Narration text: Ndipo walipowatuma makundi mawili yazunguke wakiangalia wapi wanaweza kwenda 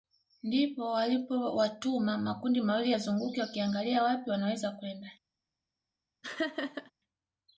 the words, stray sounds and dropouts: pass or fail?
fail